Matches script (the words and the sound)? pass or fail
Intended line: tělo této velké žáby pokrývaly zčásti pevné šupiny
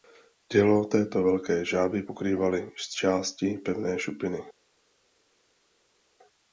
pass